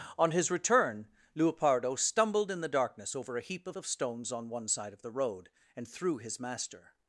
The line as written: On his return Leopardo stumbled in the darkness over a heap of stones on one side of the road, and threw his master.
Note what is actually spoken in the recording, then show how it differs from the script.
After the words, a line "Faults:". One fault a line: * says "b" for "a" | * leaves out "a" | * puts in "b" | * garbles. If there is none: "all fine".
On his return Leopardo stumbled in the darkness over a heap of of stones on one side of the road, and threw his master.
Faults:
* puts in "of"